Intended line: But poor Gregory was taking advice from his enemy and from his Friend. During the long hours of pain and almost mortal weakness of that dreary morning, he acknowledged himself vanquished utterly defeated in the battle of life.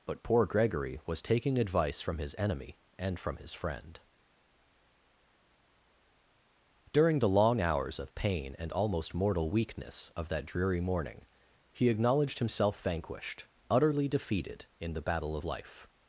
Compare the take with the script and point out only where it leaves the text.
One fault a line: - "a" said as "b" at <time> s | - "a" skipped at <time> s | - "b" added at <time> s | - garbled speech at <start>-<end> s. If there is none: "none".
none